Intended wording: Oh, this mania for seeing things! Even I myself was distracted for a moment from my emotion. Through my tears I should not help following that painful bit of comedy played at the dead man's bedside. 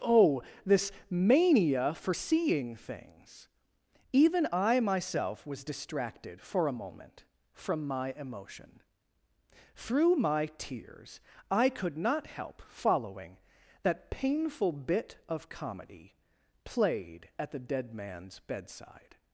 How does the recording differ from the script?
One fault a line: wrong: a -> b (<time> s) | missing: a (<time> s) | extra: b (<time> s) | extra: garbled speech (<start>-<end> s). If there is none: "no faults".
wrong: should -> could (11.7 s)